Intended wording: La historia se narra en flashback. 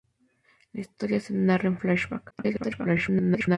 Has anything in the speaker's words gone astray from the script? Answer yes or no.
yes